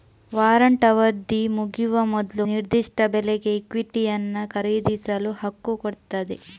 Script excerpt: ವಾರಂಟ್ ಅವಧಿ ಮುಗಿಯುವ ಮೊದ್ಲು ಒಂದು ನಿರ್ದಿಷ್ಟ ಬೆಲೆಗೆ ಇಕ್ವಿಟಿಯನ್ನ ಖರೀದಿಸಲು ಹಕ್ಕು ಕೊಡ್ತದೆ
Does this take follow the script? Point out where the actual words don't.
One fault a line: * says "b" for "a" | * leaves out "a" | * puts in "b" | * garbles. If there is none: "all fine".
* leaves out "ಒಂದು"